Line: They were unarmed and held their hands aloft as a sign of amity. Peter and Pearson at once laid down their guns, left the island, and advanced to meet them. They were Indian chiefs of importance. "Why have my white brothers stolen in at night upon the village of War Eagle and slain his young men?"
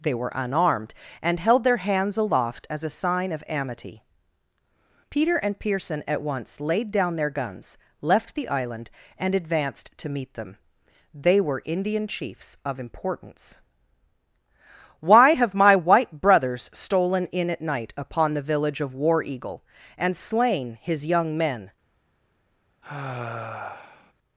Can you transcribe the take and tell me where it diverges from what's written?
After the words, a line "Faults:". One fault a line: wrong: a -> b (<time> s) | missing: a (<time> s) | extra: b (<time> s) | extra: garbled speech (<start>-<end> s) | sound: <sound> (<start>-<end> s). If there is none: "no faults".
They were unarmed and held their hands aloft as a sign of amity. Peter and Pearson at once laid down their guns, left the island, and advanced to meet them. They were Indian chiefs of importance. "Why have my white brothers stolen in at night upon the village of War Eagle and slain his young men?"
Faults:
sound: sigh (22.8-24.1 s)